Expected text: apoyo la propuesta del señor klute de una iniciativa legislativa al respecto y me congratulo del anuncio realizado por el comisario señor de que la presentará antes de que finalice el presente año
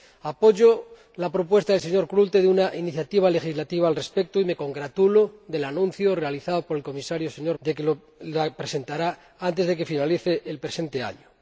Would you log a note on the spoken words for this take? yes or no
no